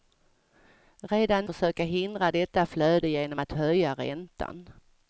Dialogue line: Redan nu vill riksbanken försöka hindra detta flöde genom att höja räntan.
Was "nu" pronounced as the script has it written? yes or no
no